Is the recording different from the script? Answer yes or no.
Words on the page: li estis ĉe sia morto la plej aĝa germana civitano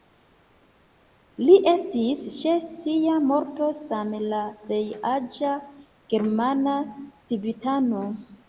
yes